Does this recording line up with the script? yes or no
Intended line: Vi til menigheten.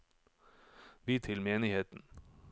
yes